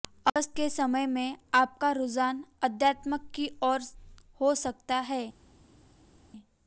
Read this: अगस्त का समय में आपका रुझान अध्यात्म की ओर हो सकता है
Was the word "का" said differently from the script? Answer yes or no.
yes